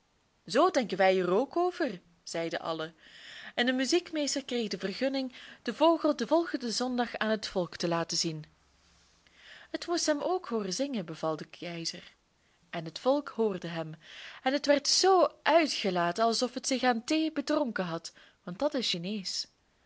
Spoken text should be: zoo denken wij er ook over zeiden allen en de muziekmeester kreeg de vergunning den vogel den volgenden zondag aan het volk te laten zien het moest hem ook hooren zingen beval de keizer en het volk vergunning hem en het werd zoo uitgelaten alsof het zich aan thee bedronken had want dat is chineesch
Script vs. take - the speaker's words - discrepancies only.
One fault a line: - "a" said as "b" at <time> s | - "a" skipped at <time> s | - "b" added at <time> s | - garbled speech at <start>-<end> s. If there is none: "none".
- "vergunning" said as "hoorde" at 13.3 s